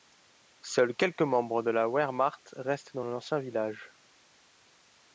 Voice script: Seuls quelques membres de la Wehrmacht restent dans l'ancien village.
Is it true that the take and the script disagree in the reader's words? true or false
false